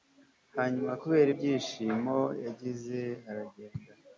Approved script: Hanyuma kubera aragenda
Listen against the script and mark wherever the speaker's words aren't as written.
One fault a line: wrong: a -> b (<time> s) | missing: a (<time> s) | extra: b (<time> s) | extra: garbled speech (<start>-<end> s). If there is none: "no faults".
extra: ibyishimo yagize (1.3 s)